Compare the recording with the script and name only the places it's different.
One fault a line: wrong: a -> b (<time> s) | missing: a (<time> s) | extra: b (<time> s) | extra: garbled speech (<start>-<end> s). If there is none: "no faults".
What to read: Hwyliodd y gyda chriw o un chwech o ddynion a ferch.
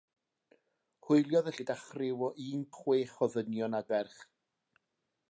no faults